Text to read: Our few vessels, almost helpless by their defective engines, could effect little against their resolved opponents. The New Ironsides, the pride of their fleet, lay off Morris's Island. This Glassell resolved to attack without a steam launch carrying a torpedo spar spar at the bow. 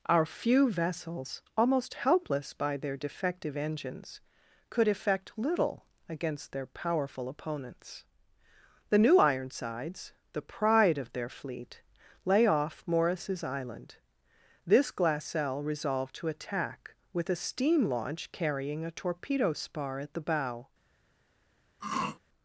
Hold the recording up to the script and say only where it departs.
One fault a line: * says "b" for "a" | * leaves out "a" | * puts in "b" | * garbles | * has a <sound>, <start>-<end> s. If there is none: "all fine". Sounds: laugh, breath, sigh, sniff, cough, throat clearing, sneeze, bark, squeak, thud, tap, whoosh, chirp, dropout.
* says "powerful" for "resolved"
* says "with" for "without"
* leaves out "spar"
* has a throat clearing, 21.8-22.2 s